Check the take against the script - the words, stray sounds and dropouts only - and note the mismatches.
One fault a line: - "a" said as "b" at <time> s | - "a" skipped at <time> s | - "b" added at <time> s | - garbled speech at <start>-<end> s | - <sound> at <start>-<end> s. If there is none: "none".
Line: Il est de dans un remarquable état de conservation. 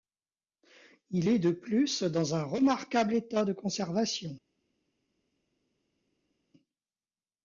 - "plus" added at 1.5 s